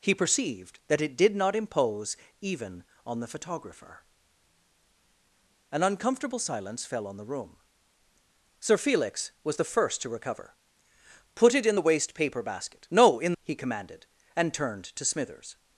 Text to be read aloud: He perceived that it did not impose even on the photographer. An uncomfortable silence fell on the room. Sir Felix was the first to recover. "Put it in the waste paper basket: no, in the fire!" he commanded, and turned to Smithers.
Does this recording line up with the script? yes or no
no